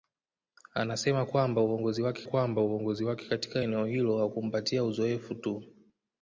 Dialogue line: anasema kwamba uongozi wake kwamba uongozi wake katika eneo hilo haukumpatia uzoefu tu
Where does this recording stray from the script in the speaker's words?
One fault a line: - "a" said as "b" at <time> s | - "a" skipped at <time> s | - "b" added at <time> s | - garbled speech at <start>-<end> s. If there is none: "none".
none